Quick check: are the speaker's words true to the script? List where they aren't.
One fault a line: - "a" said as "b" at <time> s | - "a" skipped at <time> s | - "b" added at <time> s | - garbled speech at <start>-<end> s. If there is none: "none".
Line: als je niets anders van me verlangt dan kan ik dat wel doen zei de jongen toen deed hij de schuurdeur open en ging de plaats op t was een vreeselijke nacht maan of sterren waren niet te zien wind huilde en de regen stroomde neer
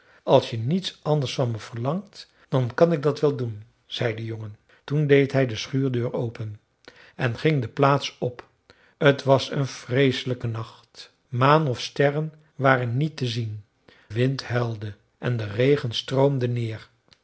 none